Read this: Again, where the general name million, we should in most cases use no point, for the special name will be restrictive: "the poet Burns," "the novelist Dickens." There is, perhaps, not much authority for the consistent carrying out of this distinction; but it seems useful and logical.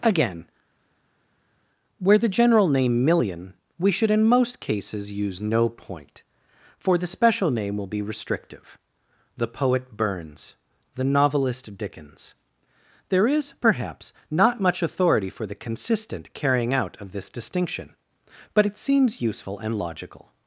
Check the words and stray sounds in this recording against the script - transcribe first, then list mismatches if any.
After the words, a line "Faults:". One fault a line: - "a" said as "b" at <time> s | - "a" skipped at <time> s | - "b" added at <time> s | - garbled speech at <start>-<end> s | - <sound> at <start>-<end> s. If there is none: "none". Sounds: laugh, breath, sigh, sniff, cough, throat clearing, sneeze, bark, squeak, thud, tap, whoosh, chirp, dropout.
Again, where the general name million, we should in most cases use no point, for the special name will be restrictive: "the poet Burns," "the novelist Dickens." There is, perhaps, not much authority for the consistent carrying out of this distinction; but it seems useful and logical.
Faults:
none